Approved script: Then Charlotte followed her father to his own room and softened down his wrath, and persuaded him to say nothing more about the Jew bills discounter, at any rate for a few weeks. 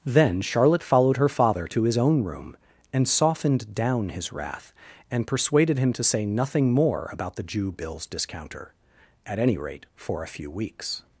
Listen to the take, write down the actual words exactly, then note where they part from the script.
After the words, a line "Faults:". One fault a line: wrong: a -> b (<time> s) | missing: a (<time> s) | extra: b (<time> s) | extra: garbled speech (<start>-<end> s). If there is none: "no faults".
Then Charlotte followed her father to his own room and softened down his wrath, and persuaded him to say nothing more about the Jew bills discounter, at any rate for a few weeks.
Faults:
no faults